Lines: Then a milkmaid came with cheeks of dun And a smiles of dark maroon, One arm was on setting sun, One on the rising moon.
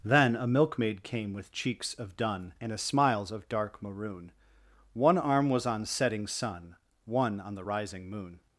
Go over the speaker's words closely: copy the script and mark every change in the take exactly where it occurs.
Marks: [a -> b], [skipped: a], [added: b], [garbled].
Then a milkmaid came with cheeks of dun And a smiles of dark maroon, One arm was on setting sun, One on the rising moon.